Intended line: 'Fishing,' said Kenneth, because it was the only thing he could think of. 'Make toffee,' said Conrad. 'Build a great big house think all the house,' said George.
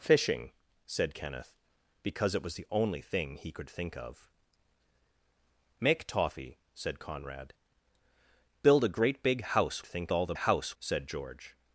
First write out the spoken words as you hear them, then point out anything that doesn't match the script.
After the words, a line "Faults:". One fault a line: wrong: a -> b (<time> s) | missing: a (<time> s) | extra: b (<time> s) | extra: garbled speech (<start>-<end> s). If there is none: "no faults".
'Fishing,' said Kenneth, because it was the only thing he could think of. 'Make toffee,' said Conrad. 'Build a great big house think all the house,' said George.
Faults:
no faults